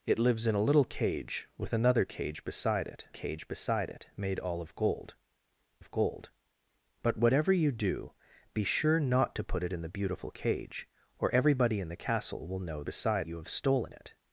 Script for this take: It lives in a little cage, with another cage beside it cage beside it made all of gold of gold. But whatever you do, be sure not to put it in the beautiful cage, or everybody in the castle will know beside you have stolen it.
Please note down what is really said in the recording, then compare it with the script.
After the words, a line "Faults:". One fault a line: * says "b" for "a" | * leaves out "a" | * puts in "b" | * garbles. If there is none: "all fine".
It lives in a little cage, with another cage beside it cage beside it made all of gold of gold. But whatever you do, be sure not to put it in the beautiful cage, or everybody in the castle will know beside you have stolen it.
Faults:
all fine